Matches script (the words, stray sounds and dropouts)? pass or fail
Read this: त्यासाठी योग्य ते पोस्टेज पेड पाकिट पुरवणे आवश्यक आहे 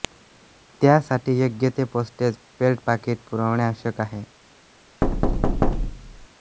fail